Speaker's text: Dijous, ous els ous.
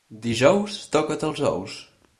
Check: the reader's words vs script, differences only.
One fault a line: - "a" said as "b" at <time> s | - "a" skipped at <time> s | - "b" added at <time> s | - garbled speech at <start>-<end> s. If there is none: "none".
- "ous" said as "toca't" at 1.0 s